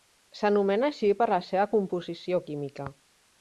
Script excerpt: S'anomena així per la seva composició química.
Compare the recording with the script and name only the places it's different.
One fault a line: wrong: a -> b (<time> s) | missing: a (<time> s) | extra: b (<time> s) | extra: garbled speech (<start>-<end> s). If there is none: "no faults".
no faults